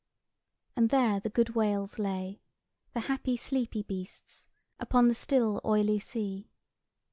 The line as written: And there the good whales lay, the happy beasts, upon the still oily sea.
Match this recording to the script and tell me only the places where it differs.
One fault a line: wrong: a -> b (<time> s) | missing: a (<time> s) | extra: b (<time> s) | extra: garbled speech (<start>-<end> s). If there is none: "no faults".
extra: sleepy (3.4 s)